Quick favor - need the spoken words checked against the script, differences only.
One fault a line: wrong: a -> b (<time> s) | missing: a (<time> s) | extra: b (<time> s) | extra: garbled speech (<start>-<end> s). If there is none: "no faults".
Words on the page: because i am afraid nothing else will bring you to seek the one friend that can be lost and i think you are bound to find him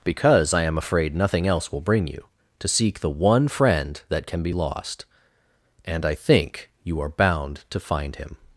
no faults